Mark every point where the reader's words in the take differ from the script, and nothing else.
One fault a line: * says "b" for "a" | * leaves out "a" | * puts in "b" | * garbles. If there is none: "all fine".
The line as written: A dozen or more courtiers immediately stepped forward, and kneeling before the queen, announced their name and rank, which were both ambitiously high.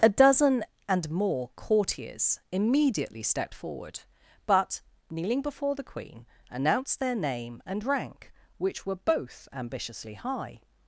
* says "and" for "or"
* says "but" for "and"